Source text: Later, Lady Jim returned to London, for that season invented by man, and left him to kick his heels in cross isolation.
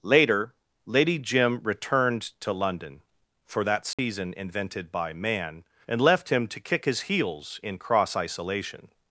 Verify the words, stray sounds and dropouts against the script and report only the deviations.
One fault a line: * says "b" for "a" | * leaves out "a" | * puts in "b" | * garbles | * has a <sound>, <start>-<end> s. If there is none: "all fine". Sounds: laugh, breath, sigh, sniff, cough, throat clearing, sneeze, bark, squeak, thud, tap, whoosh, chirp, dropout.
* has a dropout, 3.9-4.0 s